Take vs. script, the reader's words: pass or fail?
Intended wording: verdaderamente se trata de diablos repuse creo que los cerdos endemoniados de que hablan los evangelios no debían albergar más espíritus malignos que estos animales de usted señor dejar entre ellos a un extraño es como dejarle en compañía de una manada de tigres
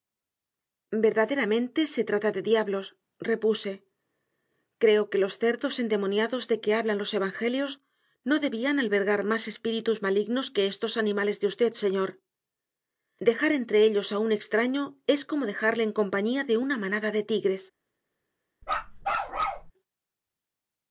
pass